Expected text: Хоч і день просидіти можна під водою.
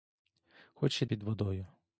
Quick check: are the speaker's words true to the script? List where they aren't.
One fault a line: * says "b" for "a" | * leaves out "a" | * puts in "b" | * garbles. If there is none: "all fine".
* leaves out "день просидіти можна"